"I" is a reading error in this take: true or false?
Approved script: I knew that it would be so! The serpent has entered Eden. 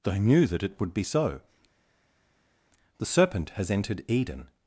true